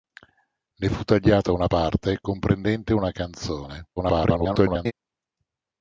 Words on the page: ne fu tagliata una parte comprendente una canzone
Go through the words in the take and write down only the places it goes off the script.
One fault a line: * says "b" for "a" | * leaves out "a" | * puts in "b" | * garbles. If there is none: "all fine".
* garbles